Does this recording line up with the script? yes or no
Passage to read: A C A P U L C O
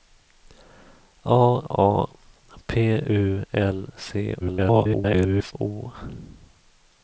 no